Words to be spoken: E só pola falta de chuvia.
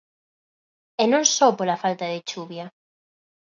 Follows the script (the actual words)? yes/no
no